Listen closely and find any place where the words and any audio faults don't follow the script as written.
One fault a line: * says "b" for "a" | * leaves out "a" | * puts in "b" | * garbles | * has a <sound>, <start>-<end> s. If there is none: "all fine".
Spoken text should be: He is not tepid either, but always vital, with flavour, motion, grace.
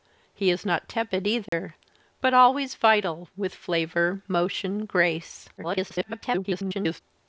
* has a dropout, 1.5-1.5 s
* garbles